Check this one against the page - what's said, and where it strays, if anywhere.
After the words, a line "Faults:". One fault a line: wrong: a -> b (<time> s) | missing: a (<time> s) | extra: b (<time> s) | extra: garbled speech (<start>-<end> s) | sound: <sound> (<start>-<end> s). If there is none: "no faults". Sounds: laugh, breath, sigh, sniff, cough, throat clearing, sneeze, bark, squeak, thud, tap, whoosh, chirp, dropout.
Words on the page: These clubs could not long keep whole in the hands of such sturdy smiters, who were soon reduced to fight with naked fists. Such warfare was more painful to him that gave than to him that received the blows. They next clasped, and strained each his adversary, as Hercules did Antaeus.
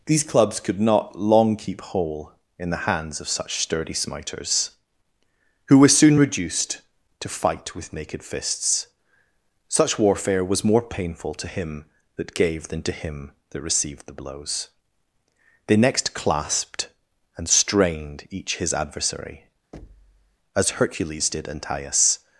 These clubs could not long keep whole in the hands of such sturdy smiters, who were soon reduced to fight with naked fists. Such warfare was more painful to him that gave than to him that received the blows. They next clasped, and strained each his adversary, as Hercules did Antaeus.
Faults:
sound: thud (19.7-20.4 s)